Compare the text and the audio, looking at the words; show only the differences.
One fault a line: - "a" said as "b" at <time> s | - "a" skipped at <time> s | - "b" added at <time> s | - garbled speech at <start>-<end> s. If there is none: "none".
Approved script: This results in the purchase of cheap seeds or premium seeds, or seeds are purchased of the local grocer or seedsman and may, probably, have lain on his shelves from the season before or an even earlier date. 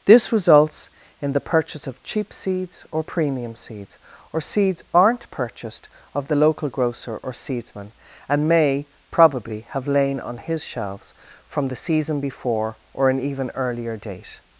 - "are" said as "aren't" at 4.9 s